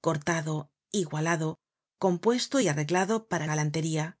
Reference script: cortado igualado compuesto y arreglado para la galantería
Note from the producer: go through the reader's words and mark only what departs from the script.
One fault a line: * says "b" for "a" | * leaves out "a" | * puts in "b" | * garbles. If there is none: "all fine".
* leaves out "la"